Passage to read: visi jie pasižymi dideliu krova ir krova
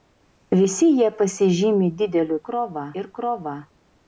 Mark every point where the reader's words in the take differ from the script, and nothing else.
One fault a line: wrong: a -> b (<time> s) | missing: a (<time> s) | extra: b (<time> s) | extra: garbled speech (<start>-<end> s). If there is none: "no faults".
no faults